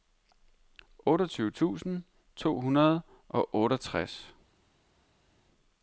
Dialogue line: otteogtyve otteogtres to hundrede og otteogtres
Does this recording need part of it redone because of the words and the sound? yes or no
yes